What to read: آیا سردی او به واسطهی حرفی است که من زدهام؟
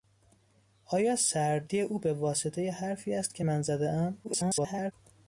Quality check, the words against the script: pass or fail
fail